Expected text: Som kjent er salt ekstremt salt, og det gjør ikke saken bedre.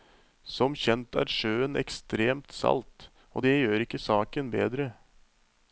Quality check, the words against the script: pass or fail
fail